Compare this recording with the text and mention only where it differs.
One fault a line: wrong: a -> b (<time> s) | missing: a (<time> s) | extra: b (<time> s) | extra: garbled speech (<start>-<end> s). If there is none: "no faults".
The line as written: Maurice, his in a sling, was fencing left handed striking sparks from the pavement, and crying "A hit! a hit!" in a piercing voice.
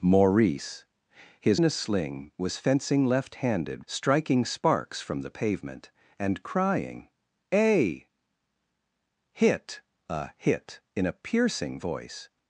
no faults